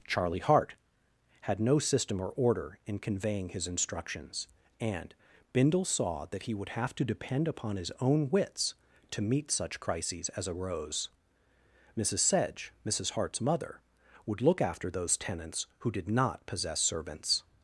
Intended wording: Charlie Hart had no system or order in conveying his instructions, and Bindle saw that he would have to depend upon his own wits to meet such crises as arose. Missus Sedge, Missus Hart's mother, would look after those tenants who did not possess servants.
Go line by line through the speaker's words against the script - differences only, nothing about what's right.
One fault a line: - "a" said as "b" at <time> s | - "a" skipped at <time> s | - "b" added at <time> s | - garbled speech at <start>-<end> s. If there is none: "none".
none